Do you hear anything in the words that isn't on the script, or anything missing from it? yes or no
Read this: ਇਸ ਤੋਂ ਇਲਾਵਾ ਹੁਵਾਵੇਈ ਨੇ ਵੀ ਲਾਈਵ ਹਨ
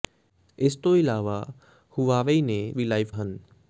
no